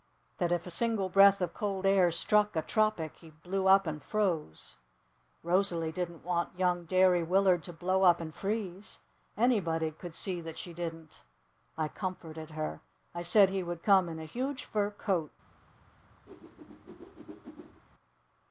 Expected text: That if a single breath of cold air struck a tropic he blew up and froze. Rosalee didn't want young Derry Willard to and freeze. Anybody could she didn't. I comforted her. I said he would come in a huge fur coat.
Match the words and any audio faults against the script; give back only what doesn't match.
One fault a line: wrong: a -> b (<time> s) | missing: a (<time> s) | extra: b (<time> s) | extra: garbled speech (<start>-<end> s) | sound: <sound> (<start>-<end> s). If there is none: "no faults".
extra: blow up (7.7 s)
extra: see that (10.1 s)
sound: whoosh (16.3-17.8 s)